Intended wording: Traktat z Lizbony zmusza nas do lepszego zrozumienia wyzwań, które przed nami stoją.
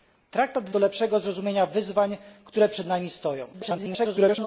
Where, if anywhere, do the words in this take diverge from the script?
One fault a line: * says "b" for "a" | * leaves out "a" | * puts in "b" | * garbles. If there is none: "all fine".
* leaves out "Lizbony zmusza nas"
* garbles